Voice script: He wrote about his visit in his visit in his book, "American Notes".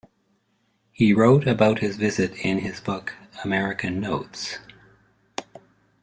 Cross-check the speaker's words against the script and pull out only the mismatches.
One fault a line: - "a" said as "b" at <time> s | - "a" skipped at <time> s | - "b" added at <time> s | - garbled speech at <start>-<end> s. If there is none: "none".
- "visit in his" skipped at 2.8 s